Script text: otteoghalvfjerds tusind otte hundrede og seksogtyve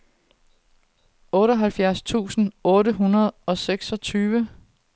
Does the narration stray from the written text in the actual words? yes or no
no